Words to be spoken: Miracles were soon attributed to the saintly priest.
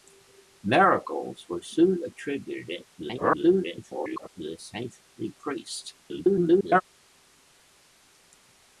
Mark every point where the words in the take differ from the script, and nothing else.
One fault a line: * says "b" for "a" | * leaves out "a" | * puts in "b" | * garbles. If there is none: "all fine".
* garbles
* garbles